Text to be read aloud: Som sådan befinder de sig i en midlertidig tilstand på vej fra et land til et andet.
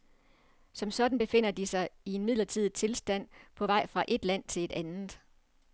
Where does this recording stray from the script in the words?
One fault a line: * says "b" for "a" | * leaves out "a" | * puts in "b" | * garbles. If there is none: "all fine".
all fine